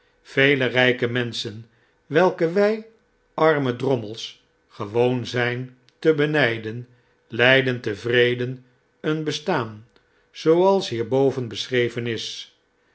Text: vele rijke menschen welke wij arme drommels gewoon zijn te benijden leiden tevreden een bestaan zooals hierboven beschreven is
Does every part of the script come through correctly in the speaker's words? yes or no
yes